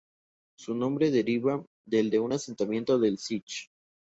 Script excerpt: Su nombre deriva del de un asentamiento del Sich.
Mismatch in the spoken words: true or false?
false